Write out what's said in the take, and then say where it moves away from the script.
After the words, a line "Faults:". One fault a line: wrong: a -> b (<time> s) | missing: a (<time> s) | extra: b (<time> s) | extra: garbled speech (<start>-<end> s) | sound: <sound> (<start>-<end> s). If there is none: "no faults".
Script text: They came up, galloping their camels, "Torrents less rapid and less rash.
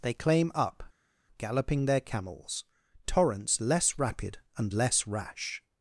They claim up, galloping their camels, "Torrents less rapid and less rash.
Faults:
wrong: came -> claim (0.1 s)